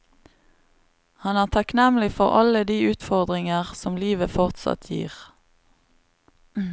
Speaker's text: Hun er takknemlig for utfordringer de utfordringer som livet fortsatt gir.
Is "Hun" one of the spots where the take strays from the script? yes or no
yes